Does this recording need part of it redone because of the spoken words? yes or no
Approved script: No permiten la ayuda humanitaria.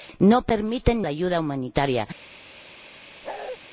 no